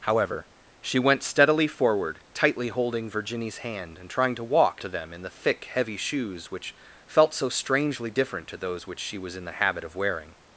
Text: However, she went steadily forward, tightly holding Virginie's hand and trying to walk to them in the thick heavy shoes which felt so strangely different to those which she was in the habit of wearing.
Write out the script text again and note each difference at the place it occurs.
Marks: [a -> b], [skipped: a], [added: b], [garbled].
However, she went steadily forward, tightly holding Virginie's hand and trying to walk to them in the thick heavy shoes which felt so strangely different to those which she was in the habit of wearing.